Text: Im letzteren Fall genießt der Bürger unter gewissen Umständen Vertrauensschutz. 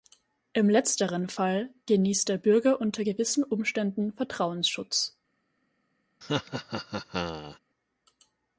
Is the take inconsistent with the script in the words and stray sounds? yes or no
yes